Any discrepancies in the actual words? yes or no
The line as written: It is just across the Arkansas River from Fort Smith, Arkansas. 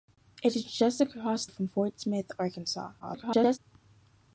yes